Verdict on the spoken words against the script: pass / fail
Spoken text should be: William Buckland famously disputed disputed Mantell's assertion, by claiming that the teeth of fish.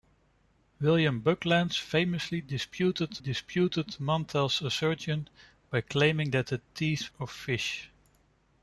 pass